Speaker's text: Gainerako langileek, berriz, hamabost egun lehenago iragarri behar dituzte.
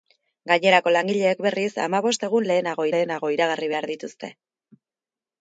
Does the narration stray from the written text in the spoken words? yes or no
yes